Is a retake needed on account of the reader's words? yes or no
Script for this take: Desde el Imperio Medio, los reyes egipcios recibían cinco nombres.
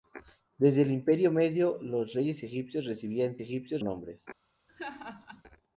yes